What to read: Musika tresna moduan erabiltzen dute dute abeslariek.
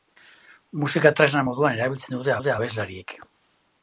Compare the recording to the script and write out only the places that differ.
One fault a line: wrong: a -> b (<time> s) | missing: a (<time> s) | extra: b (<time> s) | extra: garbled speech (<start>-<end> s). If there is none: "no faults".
no faults